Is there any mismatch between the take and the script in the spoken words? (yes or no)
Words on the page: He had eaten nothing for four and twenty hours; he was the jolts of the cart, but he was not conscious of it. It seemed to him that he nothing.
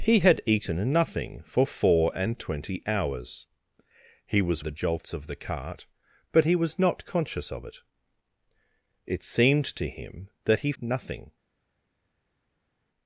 no